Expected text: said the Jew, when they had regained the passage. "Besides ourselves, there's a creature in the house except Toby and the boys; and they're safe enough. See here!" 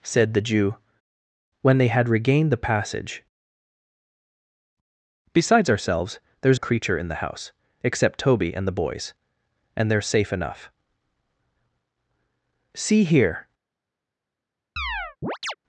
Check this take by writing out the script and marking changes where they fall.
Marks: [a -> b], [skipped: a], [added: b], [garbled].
said the Jew, when they had regained the passage. "Besides ourselves, there's a creature in the house except Toby and the boys; and they're safe enough. See here!"